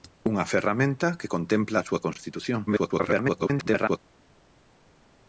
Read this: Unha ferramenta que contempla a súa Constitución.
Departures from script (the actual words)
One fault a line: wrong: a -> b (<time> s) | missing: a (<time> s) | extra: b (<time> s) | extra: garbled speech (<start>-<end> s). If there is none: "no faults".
extra: garbled speech (2.7-4.0 s)